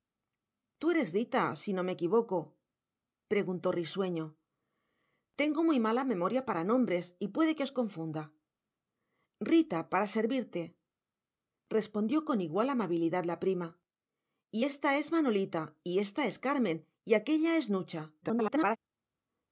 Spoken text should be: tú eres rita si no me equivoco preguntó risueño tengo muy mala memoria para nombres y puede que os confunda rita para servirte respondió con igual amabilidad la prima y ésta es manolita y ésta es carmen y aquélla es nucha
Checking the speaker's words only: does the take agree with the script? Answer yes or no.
no